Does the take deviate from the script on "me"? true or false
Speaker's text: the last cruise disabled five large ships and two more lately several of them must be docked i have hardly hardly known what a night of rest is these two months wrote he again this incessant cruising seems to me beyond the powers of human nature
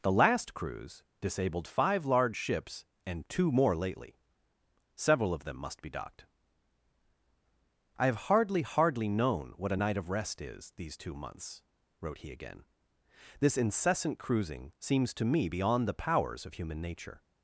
false